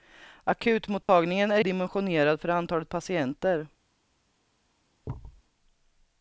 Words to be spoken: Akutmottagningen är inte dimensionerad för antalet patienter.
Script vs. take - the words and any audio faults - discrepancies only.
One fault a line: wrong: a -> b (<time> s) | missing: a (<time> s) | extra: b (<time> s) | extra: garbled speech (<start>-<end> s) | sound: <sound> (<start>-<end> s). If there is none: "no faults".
sound: dropout (1.0-1.1 s)
missing: inte (1.6 s)
sound: thud (5.0-5.4 s)